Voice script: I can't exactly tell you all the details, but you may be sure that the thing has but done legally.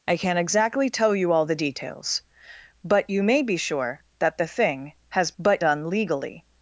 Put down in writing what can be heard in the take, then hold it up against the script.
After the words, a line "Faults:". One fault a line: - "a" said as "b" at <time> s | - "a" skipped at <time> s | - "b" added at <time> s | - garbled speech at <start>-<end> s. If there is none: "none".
I can't exactly tell you all the details, but you may be sure that the thing has but done legally.
Faults:
none